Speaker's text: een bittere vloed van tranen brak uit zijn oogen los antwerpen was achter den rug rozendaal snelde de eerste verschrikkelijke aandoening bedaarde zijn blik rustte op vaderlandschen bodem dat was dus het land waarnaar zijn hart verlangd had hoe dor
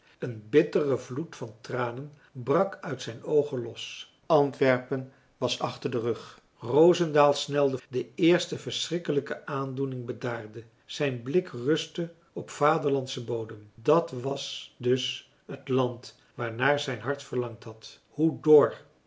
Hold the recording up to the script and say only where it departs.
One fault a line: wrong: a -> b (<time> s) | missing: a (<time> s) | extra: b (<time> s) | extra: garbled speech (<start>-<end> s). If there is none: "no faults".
no faults